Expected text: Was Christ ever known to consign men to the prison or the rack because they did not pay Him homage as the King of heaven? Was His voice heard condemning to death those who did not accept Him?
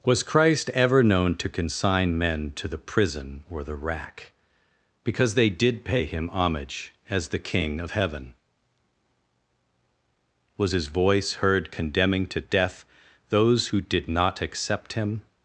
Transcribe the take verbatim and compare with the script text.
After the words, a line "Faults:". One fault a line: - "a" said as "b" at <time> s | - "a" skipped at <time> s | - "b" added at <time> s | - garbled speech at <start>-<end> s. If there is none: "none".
Was Christ ever known to consign men to the prison or the rack because they did pay Him homage as the King of heaven? Was His voice heard condemning to death those who did not accept Him?
Faults:
- "not" skipped at 5.8 s